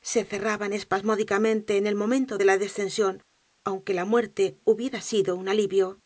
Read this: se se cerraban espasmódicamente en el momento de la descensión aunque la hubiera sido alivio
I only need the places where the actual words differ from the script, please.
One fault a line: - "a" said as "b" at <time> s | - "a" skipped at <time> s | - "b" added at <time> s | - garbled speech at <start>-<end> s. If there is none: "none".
- "se" skipped at 0.2 s
- "muerte" added at 4.0 s
- "un" added at 5.3 s